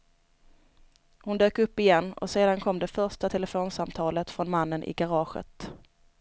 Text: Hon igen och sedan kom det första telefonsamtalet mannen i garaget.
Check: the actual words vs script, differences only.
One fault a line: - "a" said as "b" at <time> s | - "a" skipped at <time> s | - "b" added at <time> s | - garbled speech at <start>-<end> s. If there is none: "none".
- "dök upp" added at 1.4 s
- "från" added at 4.3 s